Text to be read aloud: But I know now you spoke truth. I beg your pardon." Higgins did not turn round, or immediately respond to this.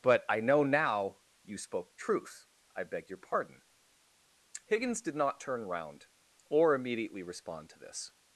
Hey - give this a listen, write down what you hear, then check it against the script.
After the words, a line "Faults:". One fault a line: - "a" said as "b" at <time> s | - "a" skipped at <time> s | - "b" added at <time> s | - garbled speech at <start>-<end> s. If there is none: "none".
But I know now you spoke truth. I beg your pardon." Higgins did not turn round, or immediately respond to this.
Faults:
none